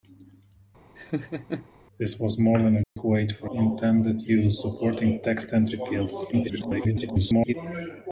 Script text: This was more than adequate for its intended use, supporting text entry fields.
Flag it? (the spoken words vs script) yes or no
yes